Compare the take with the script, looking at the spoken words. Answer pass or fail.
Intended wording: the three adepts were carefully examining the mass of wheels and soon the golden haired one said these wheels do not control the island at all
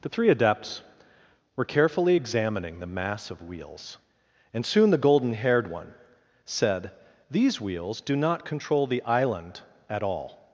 pass